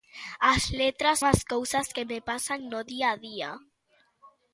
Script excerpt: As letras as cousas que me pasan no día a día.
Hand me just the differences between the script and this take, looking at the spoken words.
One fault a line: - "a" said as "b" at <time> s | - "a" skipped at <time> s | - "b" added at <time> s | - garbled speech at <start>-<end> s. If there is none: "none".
none